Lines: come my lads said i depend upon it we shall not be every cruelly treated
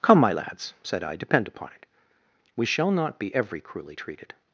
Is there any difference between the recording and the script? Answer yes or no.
no